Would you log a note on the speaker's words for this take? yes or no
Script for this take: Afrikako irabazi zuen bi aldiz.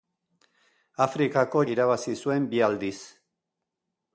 no